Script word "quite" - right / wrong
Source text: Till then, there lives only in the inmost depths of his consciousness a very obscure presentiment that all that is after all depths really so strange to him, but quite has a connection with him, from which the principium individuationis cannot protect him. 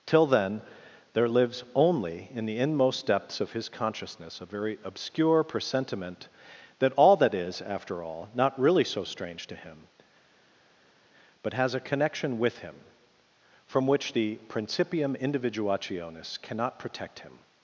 wrong